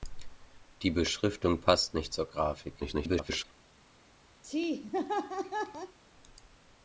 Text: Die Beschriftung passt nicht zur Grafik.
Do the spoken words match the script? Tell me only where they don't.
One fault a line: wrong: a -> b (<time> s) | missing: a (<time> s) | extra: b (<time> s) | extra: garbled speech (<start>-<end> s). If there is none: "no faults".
extra: garbled speech (2.8-3.4 s)